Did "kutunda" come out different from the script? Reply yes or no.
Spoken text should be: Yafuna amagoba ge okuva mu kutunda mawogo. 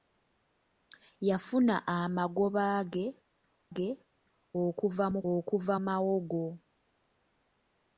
yes